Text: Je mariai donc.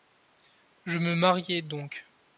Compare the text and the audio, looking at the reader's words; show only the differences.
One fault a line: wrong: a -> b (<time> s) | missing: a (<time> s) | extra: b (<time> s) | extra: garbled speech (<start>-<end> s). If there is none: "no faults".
extra: me (1.0 s)